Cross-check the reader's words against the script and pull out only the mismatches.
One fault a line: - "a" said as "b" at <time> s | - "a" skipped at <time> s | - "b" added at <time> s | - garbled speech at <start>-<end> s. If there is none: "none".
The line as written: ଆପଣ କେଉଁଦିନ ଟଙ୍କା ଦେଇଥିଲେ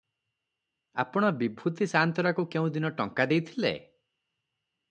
- "ବିଭୂତି ସାଆନ୍ତରାକୁ" added at 1.4 s